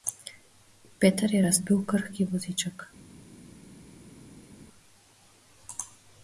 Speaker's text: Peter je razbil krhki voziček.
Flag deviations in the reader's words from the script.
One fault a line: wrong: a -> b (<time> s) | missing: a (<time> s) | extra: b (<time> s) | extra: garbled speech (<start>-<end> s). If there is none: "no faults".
no faults